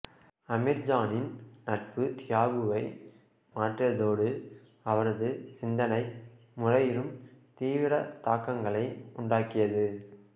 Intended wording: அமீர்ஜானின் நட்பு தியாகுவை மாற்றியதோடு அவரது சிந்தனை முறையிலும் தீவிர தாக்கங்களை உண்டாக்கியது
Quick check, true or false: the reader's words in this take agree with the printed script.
true